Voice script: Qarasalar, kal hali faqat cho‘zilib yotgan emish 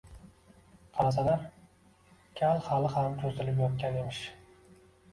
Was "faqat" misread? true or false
true